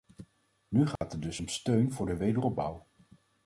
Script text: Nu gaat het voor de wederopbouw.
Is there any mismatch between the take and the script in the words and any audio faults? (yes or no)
yes